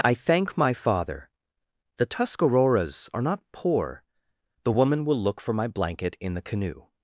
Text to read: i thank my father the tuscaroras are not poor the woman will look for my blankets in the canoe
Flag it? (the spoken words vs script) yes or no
yes